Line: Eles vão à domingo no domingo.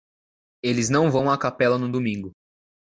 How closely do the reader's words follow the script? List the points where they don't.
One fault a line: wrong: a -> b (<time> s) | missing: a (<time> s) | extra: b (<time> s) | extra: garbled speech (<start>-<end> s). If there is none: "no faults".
extra: não (0.9 s)
wrong: domingo -> capela (1.4 s)